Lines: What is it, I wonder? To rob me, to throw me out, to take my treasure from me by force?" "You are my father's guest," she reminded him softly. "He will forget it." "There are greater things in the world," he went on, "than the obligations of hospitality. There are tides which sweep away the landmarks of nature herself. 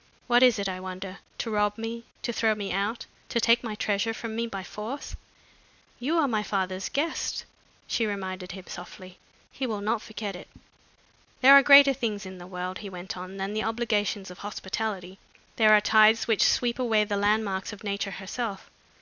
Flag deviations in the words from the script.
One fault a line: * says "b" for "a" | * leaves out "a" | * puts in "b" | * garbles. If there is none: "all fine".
* puts in "not"